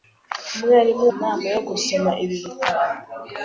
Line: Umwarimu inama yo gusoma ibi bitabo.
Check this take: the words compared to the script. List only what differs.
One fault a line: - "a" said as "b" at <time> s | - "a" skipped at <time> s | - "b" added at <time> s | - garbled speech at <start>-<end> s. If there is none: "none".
none